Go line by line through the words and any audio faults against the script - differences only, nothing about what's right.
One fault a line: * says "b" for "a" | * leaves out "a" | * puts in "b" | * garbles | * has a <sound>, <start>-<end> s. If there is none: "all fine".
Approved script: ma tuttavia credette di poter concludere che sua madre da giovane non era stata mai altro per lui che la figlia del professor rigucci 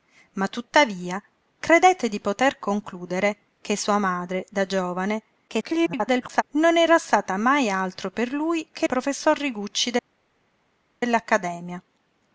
* garbles
* leaves out "la figlia del"